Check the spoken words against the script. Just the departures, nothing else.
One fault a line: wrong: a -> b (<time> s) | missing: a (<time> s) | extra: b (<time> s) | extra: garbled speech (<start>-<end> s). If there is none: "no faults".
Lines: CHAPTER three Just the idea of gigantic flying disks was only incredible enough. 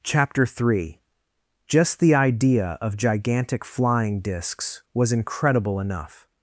missing: only (5.1 s)